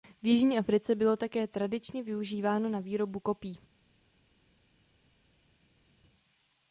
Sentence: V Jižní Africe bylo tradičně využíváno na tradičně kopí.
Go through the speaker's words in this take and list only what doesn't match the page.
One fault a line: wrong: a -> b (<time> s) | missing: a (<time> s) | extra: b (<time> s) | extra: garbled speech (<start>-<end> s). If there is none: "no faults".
extra: také (1.2 s)
wrong: tradičně -> výrobu (2.8 s)